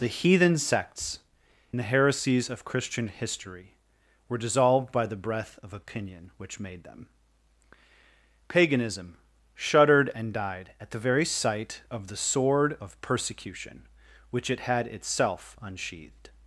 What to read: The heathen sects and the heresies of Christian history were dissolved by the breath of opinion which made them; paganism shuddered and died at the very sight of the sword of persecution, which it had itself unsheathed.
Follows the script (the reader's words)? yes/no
no